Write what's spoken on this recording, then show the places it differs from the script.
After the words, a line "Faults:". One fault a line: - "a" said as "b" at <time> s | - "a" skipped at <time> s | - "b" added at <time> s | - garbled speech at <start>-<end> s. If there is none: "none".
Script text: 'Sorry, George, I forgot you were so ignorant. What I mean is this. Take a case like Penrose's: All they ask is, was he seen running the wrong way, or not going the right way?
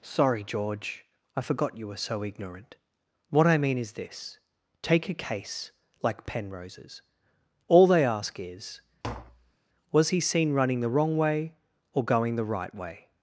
'Sorry, George, I forgot you were so ignorant. What I mean is this. Take a case like Penrose's: All they ask is, was he seen running the wrong way, or going the right way?
Faults:
- "not" skipped at 12.0 s